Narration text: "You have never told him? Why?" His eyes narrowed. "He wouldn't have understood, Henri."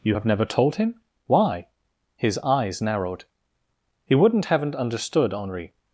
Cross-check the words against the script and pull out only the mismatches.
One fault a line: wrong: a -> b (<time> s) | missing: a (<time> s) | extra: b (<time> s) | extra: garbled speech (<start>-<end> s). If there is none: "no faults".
wrong: have -> haven't (4.4 s)